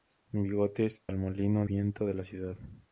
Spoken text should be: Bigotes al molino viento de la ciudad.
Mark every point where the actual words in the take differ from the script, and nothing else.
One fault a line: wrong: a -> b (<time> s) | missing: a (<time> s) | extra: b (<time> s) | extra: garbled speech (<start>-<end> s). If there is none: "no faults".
no faults